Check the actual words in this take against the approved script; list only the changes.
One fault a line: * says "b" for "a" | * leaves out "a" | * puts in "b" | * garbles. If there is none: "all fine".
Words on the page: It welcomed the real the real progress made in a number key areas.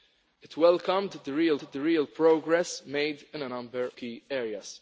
all fine